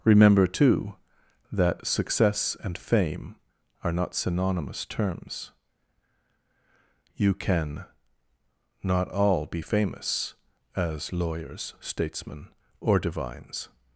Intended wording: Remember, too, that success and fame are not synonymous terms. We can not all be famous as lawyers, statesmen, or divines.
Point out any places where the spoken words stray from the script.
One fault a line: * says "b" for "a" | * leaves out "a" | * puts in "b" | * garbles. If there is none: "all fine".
* says "You" for "We"